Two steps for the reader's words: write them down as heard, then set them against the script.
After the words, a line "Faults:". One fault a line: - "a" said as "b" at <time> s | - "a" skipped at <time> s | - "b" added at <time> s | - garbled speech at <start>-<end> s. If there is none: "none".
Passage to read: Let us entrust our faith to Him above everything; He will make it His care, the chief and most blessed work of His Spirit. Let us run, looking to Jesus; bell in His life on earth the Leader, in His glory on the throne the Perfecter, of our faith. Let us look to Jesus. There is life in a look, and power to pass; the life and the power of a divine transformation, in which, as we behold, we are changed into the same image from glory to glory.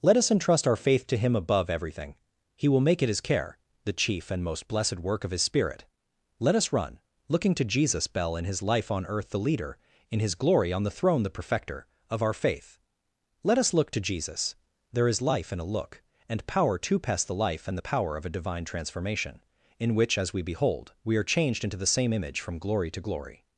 Let us entrust our faith to Him above everything; He will make it His care, the chief and most blessed work of His Spirit. Let us run, looking to Jesus; bell in His life on earth the Leader, in His glory on the throne the Perfecter, of our faith. Let us look to Jesus. There is life in a look, and power to pass; the life and the power of a divine transformation, in which, as we behold, we are changed into the same image from glory to glory.
Faults:
none